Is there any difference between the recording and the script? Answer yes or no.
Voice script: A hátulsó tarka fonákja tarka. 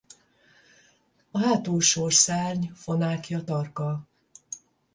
yes